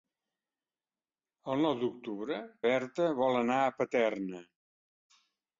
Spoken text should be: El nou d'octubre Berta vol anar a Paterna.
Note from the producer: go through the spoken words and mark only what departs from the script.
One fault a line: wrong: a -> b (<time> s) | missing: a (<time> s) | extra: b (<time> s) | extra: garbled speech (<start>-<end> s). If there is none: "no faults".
no faults